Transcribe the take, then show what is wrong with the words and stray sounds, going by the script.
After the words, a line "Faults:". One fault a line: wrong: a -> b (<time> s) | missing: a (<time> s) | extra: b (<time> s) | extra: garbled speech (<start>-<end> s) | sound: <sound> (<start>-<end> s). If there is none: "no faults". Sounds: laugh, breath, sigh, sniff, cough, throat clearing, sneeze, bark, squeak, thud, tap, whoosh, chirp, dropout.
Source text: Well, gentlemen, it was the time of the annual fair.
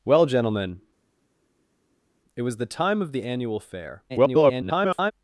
Well, gentlemen, it was the time of the annual fair. [garbled]
Faults:
extra: garbled speech (4.1-5.1 s)